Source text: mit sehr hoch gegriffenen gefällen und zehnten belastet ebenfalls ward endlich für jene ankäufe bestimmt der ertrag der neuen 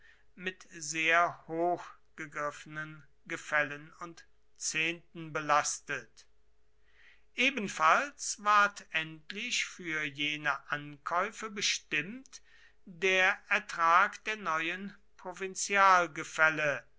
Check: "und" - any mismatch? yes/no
no